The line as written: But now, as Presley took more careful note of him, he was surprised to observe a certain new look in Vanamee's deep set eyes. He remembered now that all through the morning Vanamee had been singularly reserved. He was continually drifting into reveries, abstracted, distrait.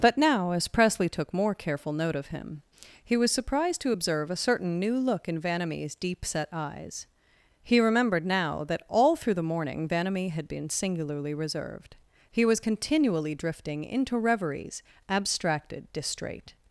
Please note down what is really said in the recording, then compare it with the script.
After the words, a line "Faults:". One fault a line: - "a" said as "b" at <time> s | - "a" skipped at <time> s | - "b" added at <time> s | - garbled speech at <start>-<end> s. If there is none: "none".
But now, as Presley took more careful note of him, he was surprised to observe a certain new look in Vanamee's deep set eyes. He remembered now that all through the morning Vanamee had been singularly reserved. He was continually drifting into reveries, abstracted, distrait.
Faults:
none